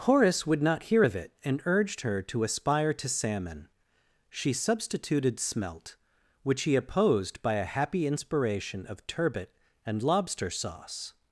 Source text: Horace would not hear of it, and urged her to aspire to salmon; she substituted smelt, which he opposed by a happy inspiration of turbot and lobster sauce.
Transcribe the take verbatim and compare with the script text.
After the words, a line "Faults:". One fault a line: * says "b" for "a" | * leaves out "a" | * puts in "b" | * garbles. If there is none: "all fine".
Horace would not hear of it, and urged her to aspire to salmon; she substituted smelt, which he opposed by a happy inspiration of turbot and lobster sauce.
Faults:
all fine